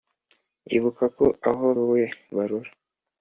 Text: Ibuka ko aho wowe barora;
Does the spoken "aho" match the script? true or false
true